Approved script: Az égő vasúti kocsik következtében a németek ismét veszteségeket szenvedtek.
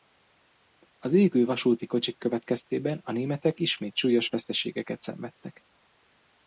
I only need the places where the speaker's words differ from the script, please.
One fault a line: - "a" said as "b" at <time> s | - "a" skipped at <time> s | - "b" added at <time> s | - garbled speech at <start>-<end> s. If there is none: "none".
- "súlyos" added at 4.0 s